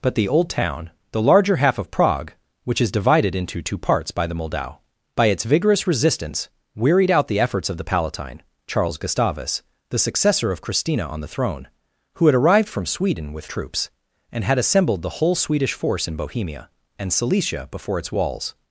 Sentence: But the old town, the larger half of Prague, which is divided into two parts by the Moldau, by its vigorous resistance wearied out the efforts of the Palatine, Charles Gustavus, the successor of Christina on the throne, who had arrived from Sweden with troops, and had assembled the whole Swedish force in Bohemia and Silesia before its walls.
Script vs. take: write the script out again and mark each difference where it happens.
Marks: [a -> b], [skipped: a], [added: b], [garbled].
But the old town, the larger half of Prague, which is divided into two parts by the Moldau, by its vigorous resistance wearied out the efforts of the Palatine, Charles Gustavus, the successor of Christina on the throne, who had arrived from Sweden with troops, and had assembled the whole Swedish force in Bohemia and Silesia before its walls.